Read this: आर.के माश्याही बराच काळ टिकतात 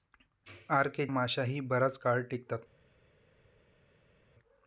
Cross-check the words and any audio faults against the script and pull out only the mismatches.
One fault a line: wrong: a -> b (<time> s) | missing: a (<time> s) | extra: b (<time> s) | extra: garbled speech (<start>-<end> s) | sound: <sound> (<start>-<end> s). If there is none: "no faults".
no faults